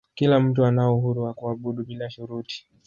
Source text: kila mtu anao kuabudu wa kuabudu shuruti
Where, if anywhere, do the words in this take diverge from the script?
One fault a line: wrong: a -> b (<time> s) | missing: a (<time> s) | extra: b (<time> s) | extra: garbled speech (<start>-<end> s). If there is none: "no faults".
wrong: kuabudu -> uhuru (1.0 s)
extra: bila (1.8 s)